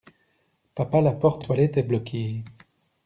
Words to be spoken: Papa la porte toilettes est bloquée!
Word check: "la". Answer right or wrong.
right